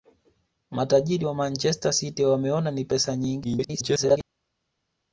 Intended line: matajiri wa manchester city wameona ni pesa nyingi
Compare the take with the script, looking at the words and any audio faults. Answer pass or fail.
fail